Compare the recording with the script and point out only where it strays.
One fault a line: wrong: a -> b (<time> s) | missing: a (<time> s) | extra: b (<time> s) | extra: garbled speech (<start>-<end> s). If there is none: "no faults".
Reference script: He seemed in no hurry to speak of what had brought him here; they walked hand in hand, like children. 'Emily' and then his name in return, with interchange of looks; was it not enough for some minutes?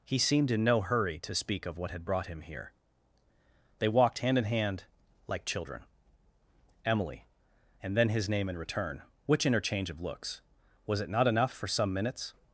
wrong: with -> which (9.3 s)